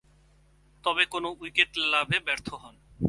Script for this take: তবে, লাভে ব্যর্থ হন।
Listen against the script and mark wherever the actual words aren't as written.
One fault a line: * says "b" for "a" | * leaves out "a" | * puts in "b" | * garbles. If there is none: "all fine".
* puts in "কোন উইকেট"